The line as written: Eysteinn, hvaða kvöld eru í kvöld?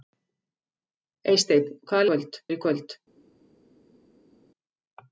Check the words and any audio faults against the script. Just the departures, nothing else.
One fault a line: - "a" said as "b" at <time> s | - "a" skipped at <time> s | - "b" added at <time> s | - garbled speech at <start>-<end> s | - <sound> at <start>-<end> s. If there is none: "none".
none